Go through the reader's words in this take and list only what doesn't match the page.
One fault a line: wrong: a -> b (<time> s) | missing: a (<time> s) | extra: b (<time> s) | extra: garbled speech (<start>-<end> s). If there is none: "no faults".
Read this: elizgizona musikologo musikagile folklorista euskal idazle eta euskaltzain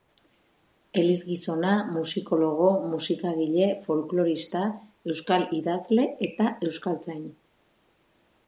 no faults